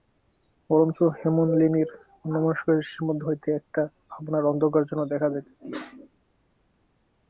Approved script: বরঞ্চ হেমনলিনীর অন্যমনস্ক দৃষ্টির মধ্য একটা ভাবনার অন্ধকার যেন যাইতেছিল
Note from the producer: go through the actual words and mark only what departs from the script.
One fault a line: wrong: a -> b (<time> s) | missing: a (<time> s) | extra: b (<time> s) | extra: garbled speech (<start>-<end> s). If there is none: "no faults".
extra: হইতে (3.3 s)
extra: দেখা (5.1 s)